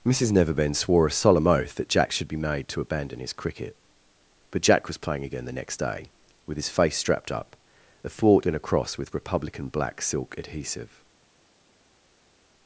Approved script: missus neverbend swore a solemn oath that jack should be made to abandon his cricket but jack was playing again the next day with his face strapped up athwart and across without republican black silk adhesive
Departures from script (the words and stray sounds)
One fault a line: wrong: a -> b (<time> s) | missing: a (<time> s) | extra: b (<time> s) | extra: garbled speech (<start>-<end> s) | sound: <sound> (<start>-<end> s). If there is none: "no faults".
wrong: without -> with (9.0 s)